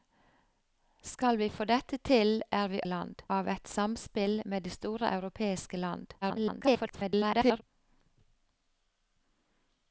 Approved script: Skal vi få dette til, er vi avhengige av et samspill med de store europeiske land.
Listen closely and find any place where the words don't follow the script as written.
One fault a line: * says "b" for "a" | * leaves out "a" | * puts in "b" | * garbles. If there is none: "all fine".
* says "land" for "avhengige"
* garbles